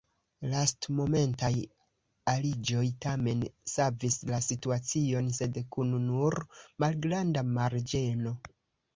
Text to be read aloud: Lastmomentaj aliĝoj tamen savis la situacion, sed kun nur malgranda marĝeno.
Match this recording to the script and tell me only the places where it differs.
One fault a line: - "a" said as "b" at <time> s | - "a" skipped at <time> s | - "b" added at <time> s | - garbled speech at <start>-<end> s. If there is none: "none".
none